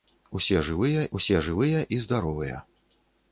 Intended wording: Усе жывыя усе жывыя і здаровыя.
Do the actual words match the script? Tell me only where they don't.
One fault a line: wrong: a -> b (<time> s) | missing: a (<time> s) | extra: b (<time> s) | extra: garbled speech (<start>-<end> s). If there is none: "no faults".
no faults